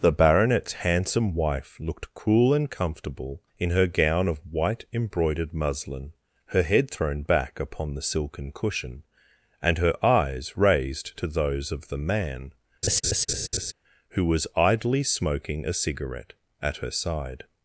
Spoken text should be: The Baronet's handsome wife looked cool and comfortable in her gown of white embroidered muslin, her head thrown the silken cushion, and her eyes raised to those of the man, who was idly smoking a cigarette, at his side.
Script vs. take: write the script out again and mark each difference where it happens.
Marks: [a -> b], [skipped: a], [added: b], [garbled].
The Baronet's handsome wife looked cool and comfortable in her gown of white embroidered muslin, her head thrown [added: back upon] the silken cushion, and her eyes raised to those of the man, who was idly smoking a cigarette, at [his -> her] side.